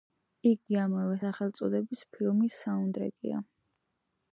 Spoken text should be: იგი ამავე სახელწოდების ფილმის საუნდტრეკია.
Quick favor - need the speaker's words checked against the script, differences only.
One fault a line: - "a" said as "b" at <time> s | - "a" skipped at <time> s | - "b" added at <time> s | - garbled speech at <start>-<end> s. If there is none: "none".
none